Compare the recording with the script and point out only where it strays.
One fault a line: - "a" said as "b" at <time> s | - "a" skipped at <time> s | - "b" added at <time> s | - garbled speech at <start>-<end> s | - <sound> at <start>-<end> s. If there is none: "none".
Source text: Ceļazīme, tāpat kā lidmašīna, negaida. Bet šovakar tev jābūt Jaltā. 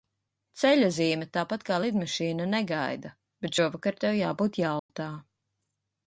- dropout at 4.8-4.9 s